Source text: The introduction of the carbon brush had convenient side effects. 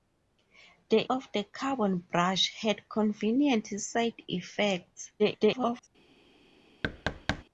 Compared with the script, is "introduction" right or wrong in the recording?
wrong